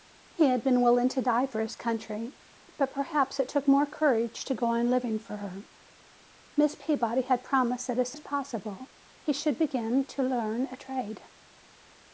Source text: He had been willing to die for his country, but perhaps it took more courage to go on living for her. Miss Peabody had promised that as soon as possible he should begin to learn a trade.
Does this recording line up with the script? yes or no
no